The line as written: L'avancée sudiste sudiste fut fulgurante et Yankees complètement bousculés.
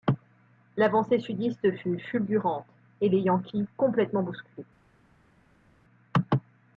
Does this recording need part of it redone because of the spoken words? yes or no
yes